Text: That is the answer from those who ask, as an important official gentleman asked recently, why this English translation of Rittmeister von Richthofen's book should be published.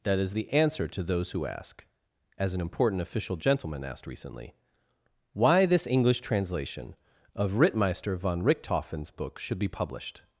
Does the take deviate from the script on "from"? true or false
true